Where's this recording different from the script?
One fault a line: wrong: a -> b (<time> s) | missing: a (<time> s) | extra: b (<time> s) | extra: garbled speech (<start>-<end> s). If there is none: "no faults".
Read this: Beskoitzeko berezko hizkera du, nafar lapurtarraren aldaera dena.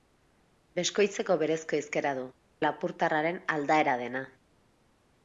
missing: nafar (2.2 s)